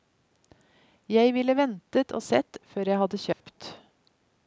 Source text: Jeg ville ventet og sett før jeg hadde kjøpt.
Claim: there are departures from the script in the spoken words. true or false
false